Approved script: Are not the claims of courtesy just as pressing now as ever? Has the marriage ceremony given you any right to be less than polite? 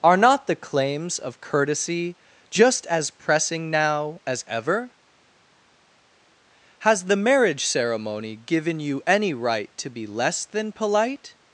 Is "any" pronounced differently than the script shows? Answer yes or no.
no